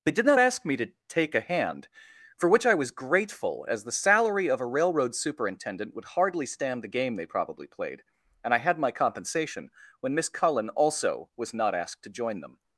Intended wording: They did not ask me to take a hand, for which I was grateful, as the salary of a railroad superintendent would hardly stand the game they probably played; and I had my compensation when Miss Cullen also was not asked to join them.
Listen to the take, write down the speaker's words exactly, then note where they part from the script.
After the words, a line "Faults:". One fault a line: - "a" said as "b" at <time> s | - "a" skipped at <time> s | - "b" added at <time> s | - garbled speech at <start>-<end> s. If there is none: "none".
They did not ask me to take a hand, for which I was grateful, as the salary of a railroad superintendent would hardly stand the game they probably played; and I had my compensation when Miss Cullen also was not asked to join them.
Faults:
none